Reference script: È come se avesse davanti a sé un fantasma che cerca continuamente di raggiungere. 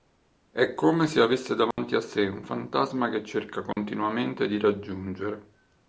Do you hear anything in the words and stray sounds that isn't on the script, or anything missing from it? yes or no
yes